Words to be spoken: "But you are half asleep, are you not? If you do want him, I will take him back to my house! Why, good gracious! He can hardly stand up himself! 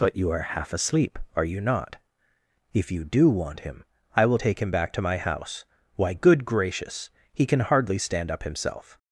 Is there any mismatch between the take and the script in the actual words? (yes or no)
no